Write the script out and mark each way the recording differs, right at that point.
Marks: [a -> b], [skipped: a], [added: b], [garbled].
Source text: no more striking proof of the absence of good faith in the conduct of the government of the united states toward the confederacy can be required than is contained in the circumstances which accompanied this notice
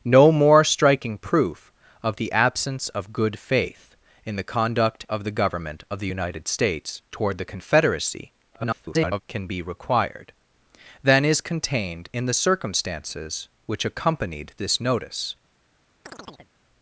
no more striking proof of the absence of good faith in the conduct of the government of the united states toward the confederacy [garbled] can be required than is contained in the circumstances which accompanied this notice